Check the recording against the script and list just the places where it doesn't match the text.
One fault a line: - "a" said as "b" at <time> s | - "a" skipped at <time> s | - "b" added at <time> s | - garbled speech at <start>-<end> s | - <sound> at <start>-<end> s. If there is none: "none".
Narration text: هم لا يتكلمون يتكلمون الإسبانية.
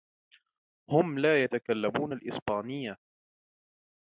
- "يتكلمون" skipped at 2.1 s